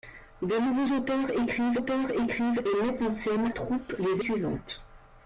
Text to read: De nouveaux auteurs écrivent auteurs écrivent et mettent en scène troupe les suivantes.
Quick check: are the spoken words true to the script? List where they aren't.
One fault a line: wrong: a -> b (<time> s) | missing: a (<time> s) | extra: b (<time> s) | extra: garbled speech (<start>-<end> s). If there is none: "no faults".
no faults